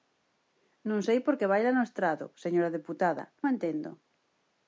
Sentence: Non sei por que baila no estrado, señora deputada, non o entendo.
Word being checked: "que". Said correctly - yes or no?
yes